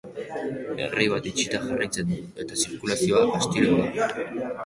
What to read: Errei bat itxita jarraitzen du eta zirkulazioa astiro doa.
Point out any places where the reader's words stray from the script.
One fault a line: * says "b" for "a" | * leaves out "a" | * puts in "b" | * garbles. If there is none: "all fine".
all fine